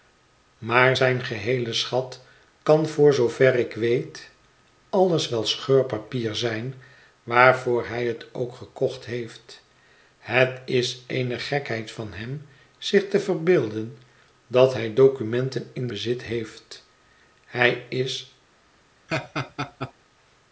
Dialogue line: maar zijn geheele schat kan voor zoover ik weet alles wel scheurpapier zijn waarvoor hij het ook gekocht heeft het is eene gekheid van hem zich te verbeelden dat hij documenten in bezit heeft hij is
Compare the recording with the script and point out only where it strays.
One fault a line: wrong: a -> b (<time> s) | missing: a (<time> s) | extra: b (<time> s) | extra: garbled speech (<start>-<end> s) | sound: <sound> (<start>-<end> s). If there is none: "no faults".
sound: laugh (19.1-19.9 s)